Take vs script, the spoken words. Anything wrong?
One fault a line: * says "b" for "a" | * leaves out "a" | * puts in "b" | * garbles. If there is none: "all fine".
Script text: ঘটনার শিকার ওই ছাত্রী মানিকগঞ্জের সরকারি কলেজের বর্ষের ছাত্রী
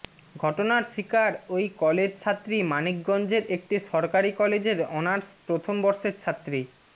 * puts in "কলেজ"
* puts in "একটি"
* puts in "অনার্স প্রথম"